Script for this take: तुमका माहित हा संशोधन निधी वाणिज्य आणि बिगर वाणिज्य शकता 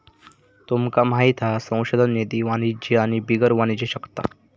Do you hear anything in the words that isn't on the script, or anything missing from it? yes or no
no